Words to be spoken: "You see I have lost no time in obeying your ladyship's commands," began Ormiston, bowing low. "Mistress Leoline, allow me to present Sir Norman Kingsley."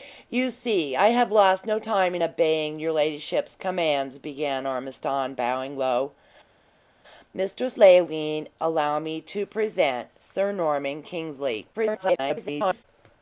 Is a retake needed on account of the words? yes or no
yes